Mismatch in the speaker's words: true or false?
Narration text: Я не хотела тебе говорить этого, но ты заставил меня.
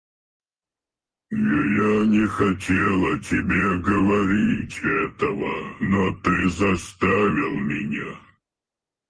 false